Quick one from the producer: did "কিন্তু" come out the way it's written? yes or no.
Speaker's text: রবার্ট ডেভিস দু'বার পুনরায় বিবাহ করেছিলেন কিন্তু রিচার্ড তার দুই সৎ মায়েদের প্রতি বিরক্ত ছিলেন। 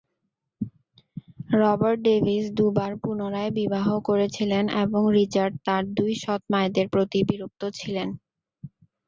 no